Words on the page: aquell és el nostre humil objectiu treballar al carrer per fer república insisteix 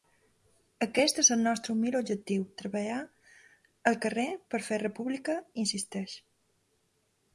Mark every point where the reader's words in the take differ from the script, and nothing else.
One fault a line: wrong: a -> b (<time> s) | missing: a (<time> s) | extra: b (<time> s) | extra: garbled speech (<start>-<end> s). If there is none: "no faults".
wrong: aquell -> aquest (0.8 s)